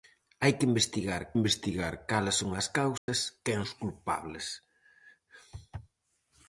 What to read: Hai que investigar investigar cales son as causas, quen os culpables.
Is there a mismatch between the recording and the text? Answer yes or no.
no